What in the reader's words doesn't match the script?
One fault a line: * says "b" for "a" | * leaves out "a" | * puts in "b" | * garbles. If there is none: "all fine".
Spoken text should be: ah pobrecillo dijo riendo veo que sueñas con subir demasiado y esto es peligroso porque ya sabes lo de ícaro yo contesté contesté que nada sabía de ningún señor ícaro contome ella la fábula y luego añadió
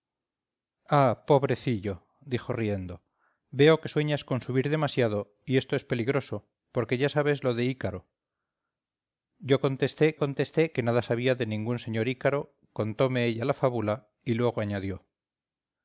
all fine